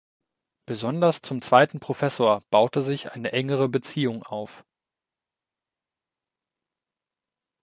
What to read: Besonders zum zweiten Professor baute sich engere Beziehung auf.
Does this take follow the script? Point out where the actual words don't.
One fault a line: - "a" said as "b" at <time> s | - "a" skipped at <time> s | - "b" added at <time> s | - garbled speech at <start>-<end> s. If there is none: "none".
- "eine" added at 3.1 s